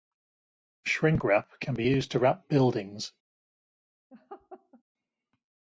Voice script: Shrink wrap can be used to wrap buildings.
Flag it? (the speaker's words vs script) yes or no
no